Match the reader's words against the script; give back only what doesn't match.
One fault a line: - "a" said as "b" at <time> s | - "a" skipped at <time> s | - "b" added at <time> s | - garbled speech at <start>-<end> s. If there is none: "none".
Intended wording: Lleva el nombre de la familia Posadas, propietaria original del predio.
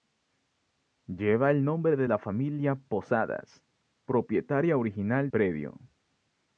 - "del" skipped at 5.3 s